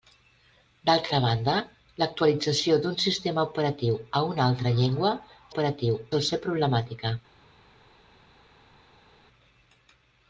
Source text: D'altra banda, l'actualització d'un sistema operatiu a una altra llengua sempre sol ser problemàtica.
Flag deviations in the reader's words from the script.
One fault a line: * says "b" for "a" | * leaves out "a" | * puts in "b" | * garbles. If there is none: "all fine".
* says "operatiu" for "sempre"